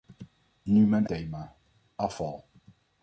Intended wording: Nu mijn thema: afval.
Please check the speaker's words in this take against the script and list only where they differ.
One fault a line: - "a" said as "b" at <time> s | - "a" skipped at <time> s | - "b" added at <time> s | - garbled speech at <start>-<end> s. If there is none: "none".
none